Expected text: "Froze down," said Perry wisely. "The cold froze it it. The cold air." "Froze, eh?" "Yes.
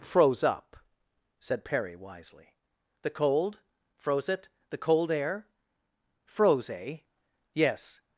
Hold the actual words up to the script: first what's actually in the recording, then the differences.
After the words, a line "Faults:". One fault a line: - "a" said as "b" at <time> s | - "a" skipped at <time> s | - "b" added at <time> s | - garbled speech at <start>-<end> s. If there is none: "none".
"Froze up," said Perry wisely. "The cold froze it. The cold air." "Froze, eh?" "Yes.
Faults:
- "down" said as "up" at 0.4 s
- "it" skipped at 4.5 s